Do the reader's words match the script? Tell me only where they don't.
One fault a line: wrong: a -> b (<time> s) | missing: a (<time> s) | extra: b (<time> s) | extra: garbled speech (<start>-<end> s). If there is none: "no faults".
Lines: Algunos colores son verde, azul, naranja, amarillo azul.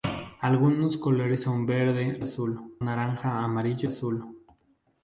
no faults